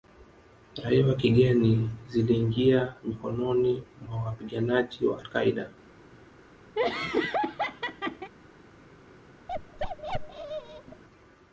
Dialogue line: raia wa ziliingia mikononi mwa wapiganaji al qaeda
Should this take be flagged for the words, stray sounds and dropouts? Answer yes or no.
yes